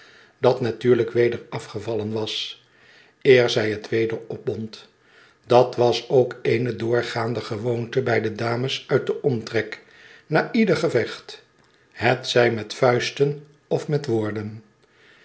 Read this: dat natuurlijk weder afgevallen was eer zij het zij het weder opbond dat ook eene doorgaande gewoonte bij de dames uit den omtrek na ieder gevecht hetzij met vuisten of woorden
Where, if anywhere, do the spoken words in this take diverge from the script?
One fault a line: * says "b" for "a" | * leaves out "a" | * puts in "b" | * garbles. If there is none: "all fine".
* leaves out "zij het"
* puts in "was"
* puts in "met"